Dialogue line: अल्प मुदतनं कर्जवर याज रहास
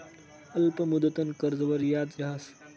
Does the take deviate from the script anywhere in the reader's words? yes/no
no